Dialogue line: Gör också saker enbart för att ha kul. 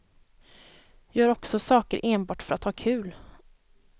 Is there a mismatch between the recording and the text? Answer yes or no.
no